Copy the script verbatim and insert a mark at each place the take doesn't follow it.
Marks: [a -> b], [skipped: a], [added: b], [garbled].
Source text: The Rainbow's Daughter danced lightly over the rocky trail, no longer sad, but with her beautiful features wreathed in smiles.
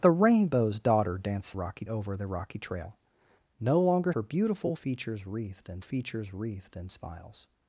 The Rainbow's Daughter danced [lightly -> rocky] over the rocky trail, no longer [sad, but with her beautiful -> her beautiful features wreathed in] features wreathed in smiles.